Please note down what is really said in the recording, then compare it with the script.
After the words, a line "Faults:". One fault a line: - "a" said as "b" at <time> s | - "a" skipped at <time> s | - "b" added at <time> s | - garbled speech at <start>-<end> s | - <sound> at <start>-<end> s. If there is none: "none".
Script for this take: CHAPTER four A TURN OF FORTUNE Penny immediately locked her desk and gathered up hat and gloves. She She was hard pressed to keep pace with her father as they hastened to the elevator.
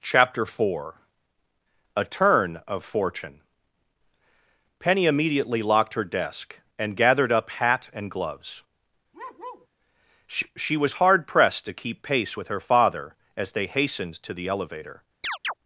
CHAPTER four A TURN OF FORTUNE Penny immediately locked her desk and gathered up hat and gloves. She She was hard pressed to keep pace with her father as they hastened to the elevator.
Faults:
- bark at 9.1-9.7 s
- chirp at 15.2-15.5 s